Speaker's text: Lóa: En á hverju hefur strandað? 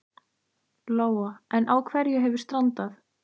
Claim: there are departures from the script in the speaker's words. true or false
false